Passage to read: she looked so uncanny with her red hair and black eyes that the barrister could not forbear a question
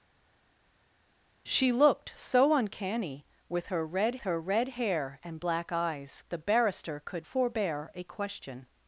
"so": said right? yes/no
yes